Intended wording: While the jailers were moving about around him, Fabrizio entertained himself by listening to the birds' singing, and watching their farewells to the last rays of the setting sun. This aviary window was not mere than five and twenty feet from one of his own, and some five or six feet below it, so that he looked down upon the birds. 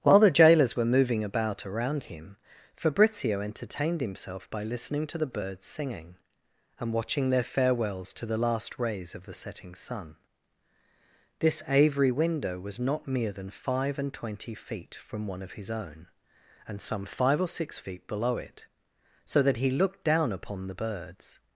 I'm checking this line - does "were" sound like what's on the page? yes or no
yes